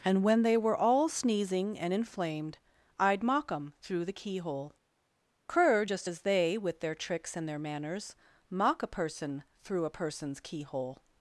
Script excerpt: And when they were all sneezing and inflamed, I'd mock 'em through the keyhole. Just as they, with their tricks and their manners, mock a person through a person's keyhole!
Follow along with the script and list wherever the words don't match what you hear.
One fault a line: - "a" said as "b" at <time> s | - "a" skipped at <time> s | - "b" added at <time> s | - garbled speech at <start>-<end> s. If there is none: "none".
- "cur" added at 5.5 s